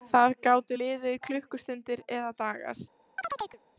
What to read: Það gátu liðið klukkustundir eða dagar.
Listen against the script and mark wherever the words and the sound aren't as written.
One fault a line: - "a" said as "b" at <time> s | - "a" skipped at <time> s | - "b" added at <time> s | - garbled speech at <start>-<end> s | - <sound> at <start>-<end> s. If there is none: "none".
- chirp at 3.2-3.6 s